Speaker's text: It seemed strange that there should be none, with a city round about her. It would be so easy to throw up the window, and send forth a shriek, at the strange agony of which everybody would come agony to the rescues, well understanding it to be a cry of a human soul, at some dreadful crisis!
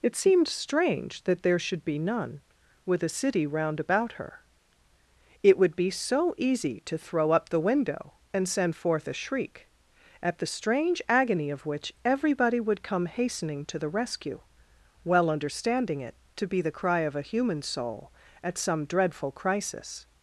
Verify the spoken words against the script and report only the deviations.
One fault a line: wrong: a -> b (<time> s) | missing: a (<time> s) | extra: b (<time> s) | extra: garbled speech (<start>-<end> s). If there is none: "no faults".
wrong: agony -> hastening (13.1 s)
wrong: rescues -> rescue (13.9 s)
wrong: a -> the (16.6 s)